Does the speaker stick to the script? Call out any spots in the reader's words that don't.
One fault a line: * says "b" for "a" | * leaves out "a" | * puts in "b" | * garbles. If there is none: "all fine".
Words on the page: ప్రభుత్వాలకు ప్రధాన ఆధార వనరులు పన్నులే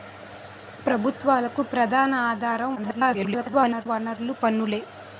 * garbles